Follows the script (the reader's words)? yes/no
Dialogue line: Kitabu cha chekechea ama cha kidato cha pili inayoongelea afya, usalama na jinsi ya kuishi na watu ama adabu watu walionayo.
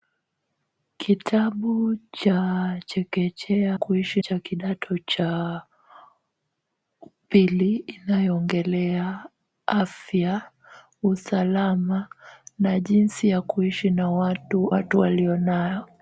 no